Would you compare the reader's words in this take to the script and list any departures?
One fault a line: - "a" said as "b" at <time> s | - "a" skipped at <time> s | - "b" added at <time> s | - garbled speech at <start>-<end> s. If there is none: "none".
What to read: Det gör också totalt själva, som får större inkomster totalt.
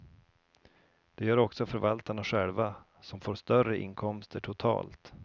- "totalt" said as "förvaltarna" at 1.6 s